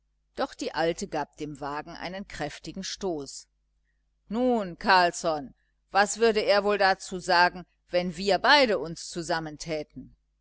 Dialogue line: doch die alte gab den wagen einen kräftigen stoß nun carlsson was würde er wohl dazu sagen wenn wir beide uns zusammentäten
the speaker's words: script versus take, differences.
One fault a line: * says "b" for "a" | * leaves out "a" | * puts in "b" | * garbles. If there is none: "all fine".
* says "dem" for "den"